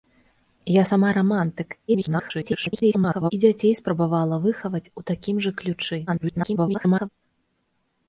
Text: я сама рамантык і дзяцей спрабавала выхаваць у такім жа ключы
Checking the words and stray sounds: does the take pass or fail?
fail